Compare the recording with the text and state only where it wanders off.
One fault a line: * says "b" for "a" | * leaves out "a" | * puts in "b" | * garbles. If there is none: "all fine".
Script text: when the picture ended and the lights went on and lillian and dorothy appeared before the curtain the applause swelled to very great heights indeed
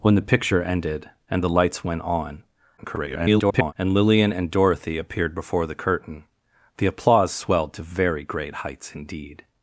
* garbles